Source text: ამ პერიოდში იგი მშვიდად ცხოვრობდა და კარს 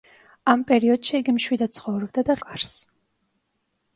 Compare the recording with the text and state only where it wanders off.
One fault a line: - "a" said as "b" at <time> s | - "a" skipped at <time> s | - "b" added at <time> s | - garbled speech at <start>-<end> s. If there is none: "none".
none